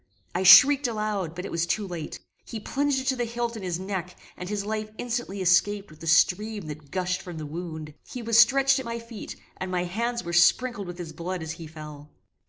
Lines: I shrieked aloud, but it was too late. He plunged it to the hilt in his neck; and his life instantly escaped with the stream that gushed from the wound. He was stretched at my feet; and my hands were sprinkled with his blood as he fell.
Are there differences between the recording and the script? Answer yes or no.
no